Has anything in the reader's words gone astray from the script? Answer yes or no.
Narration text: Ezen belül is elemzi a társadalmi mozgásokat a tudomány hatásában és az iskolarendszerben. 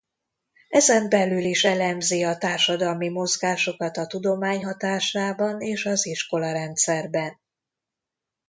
no